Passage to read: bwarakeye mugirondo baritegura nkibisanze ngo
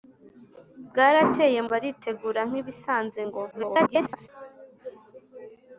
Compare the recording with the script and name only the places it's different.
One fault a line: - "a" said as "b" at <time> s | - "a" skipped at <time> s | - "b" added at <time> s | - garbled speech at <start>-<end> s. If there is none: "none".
- "mugirondo" skipped at 1.6 s
- garbled speech at 3.5-4.3 s